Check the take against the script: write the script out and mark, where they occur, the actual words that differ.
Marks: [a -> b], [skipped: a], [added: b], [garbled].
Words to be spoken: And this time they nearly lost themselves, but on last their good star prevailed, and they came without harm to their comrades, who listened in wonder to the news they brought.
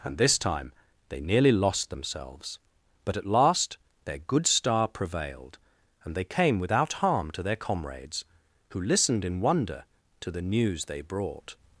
And this time they nearly lost themselves, but [on -> at] last their good star prevailed, and they came without harm to their comrades, who listened in wonder to the news they brought.